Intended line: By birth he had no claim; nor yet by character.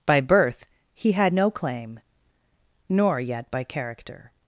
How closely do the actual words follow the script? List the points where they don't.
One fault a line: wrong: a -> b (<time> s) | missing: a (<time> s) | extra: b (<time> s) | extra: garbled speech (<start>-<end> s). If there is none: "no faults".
no faults